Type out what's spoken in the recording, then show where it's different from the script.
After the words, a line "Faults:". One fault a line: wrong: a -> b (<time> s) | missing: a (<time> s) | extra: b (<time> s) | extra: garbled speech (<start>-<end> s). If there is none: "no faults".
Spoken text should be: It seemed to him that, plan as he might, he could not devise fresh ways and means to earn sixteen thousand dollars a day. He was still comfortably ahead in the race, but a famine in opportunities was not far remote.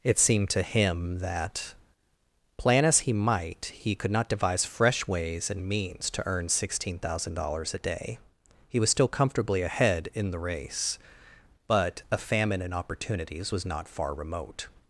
It seemed to him that, plan as he might, he could not devise fresh ways and means to earn sixteen thousand dollars a day. He was still comfortably ahead in the race, but a famine in opportunities was not far remote.
Faults:
no faults